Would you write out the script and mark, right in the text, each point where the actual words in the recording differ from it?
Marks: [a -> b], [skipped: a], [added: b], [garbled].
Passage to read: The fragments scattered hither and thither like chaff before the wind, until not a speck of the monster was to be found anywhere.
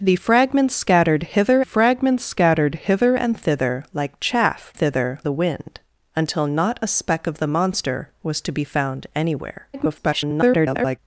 The fragments scattered hither [added: fragments scattered hither] and thither like chaff [before -> thither] the wind, until not a speck of the monster was to be found anywhere. [garbled]